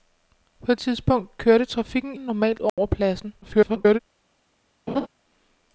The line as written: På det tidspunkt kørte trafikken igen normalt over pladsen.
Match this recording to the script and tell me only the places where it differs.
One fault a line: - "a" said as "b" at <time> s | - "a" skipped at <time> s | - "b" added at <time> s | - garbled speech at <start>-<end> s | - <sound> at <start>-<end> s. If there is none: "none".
- "det" skipped at 0.7 s
- "igen" skipped at 2.2 s
- dropout at 2.7-2.8 s
- garbled speech at 3.4-4.0 s
- laugh at 4.9-5.1 s